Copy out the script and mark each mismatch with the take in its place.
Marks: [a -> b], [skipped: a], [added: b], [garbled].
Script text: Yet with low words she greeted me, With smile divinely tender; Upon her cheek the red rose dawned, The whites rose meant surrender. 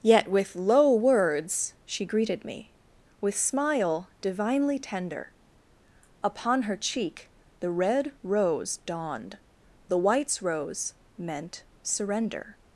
Yet with low words she greeted me, With smile divinely tender; Upon her cheek the red rose dawned, The whites rose meant surrender.